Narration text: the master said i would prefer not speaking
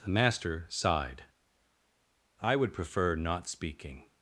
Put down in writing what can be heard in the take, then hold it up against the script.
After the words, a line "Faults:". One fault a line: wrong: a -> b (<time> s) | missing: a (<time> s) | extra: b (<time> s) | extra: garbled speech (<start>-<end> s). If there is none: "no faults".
the master sighed i would prefer not speaking
Faults:
wrong: said -> sighed (0.7 s)